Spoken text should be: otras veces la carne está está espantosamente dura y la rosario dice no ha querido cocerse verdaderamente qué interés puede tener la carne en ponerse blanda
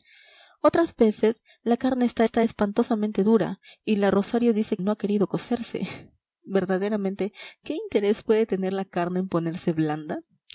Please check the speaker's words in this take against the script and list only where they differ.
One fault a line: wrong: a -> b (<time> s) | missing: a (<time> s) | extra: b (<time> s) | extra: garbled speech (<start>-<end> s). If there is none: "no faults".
no faults